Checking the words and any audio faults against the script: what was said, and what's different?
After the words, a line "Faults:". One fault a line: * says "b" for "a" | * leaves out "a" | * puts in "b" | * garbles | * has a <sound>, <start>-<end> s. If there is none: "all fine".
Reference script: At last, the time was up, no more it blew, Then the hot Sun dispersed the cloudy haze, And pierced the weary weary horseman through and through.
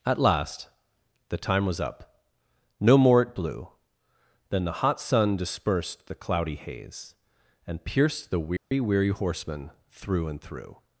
At last, the time was up, no more it blew, Then the hot Sun dispersed the cloudy haze, And pierced the weary weary horseman through and through.
Faults:
* has a dropout, 8.6-8.7 s